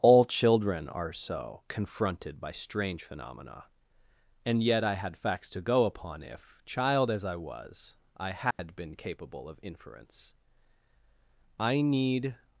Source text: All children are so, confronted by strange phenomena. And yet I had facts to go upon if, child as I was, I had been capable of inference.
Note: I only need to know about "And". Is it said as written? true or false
true